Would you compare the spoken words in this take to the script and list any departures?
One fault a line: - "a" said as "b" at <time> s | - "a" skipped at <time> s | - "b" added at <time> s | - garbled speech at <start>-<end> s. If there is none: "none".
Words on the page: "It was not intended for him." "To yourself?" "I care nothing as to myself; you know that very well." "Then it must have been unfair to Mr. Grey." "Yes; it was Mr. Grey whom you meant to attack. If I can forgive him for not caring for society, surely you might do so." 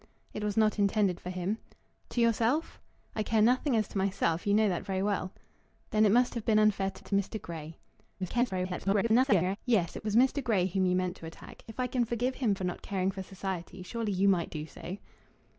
- "to" added at 7.0 s
- garbled speech at 8.2-9.6 s